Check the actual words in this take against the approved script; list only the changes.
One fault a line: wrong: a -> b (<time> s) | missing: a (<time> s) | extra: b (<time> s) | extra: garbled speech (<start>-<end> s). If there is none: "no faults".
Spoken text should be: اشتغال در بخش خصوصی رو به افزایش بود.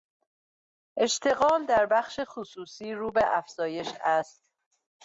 wrong: بود -> است (4.0 s)